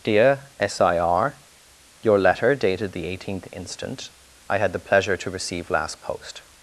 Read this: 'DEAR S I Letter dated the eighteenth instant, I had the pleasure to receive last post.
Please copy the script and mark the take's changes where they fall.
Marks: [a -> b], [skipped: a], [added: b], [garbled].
'DEAR S I [added: R Your] Letter dated the eighteenth instant, I had the pleasure to receive last post.